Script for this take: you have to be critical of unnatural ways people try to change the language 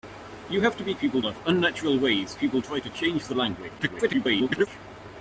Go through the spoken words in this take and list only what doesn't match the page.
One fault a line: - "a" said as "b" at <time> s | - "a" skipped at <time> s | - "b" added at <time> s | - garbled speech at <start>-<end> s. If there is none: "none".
- "critical" said as "people" at 1.0 s
- garbled speech at 3.8-4.7 s